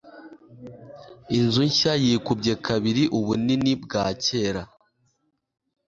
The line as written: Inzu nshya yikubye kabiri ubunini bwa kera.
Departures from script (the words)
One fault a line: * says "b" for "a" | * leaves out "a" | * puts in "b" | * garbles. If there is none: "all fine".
all fine